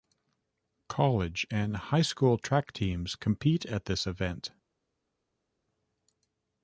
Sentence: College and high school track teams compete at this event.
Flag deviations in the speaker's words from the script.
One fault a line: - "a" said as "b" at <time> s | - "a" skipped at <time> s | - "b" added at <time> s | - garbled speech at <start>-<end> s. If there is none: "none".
none